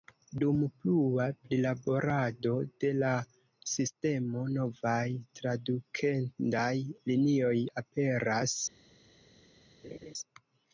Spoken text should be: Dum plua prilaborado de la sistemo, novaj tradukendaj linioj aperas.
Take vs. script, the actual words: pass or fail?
pass